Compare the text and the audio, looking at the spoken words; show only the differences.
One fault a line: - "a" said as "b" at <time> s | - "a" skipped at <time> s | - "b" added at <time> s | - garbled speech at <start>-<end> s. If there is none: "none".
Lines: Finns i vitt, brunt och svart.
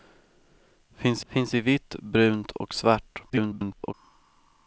- "finns" added at 1.3 s
- garbled speech at 3.3-3.9 s